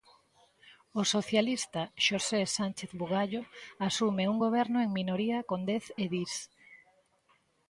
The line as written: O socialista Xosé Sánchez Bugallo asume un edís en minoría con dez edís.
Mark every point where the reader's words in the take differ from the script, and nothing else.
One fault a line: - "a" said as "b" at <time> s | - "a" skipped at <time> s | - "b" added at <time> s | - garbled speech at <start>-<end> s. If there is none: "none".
- "edís" said as "goberno" at 4.4 s